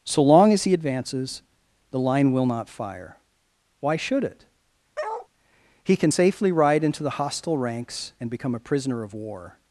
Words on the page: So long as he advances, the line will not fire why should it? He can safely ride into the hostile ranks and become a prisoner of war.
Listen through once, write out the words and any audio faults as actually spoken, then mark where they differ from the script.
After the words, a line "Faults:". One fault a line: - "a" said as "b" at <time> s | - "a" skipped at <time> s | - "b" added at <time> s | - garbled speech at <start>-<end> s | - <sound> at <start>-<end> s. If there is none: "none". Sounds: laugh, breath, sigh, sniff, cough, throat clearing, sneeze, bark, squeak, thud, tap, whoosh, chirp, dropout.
So long as he advances, the line will not fire why should it? He can safely ride into the hostile ranks and become a prisoner of war.
Faults:
- bark at 5.0-5.3 s